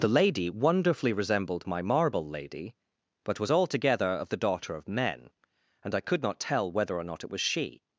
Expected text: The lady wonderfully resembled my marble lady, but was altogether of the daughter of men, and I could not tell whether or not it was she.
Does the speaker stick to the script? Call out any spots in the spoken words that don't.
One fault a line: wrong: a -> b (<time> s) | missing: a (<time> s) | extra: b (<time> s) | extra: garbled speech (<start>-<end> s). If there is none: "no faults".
no faults